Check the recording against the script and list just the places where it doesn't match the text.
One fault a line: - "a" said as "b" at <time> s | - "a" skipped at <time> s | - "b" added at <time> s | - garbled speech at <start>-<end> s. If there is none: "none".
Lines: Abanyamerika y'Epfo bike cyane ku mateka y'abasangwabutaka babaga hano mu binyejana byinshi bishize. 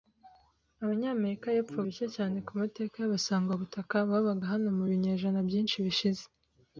none